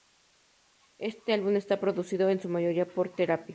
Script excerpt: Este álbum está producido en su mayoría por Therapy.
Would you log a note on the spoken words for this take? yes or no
no